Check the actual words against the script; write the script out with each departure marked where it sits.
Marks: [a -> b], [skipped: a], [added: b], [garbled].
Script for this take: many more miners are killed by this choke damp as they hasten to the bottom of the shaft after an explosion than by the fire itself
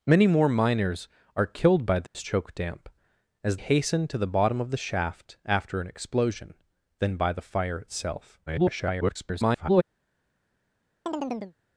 many more miners are killed by this choke damp as [skipped: they] hasten to the bottom of the shaft after an explosion than by the fire itself [garbled]